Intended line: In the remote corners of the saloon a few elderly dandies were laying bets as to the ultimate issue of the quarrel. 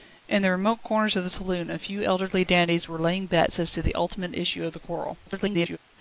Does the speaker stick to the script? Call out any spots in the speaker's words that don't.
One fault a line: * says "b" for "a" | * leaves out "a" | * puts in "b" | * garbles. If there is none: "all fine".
* garbles